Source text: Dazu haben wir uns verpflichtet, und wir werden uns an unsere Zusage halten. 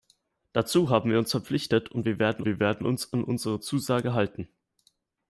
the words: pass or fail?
fail